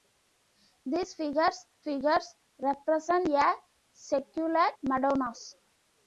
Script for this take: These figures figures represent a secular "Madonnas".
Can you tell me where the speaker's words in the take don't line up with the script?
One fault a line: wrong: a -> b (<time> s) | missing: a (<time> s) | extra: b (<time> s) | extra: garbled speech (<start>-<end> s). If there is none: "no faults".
no faults